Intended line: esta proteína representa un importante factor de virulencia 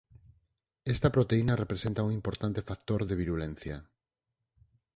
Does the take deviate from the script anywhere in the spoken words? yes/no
no